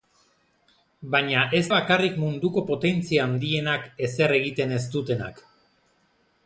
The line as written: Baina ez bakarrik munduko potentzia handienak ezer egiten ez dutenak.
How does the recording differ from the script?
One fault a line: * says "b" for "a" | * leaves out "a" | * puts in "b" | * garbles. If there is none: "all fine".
all fine